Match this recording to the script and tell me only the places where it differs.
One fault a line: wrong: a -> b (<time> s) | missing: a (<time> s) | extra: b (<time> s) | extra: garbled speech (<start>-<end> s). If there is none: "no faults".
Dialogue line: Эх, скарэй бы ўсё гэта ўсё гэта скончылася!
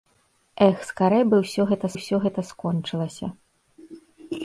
no faults